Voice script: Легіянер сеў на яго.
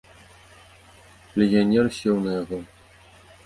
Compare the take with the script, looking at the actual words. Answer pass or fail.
pass